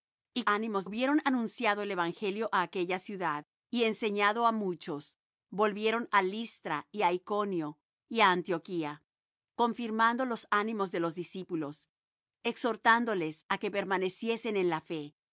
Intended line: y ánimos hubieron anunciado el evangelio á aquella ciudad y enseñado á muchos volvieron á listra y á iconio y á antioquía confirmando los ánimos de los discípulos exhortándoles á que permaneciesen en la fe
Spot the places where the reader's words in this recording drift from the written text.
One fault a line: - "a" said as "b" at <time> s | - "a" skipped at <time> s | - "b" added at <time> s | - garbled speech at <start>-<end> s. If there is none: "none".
none